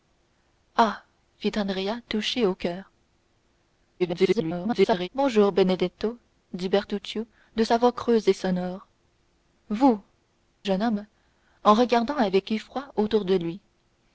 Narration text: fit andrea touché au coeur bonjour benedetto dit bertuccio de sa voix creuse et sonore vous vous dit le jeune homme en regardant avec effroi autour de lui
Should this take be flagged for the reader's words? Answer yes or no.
yes